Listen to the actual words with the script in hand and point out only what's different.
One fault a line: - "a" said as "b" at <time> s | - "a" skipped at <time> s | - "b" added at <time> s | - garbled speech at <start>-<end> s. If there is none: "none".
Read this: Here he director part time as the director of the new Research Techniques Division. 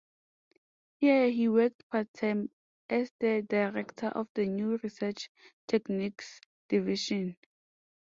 - "director" said as "worked" at 1.5 s